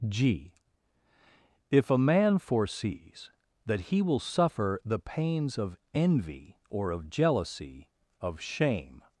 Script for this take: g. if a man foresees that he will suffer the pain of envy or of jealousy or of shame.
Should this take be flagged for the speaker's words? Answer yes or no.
yes